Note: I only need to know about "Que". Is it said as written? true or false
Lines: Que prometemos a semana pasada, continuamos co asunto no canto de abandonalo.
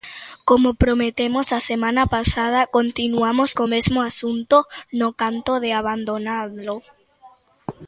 false